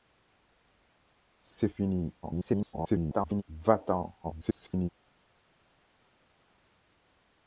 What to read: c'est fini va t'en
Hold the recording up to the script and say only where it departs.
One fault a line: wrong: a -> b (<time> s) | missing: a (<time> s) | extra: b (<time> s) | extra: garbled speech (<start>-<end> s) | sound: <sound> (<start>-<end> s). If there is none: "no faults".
extra: garbled speech (2.2-3.4 s)
extra: garbled speech (4.2-4.9 s)